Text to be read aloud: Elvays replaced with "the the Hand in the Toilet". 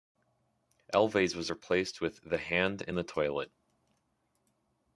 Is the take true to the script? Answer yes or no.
no